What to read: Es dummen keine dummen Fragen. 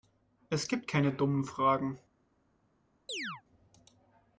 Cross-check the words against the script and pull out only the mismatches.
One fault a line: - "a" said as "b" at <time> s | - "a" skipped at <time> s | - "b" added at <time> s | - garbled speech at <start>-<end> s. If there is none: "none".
- "dummen" said as "gibt" at 0.7 s